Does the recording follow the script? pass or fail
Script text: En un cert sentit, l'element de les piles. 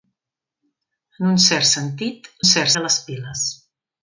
fail